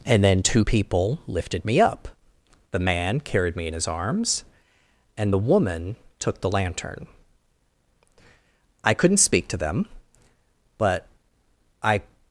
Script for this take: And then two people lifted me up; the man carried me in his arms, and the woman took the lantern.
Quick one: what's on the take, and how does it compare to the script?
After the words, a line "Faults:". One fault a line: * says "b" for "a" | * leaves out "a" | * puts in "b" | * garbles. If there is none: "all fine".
And then two people lifted me up; the man carried me in his arms, and the woman took the lantern. I couldn't speak to them; but I
Faults:
* puts in "I couldn't speak to them but I"